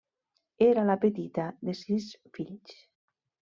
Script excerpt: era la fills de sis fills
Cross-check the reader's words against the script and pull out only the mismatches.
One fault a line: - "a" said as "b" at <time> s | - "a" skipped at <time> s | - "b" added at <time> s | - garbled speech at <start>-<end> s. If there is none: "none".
- "fills" said as "petita" at 1.0 s